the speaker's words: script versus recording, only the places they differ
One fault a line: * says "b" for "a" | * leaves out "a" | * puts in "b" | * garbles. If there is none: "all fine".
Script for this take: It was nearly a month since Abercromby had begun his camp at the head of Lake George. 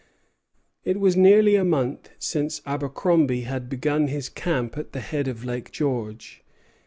all fine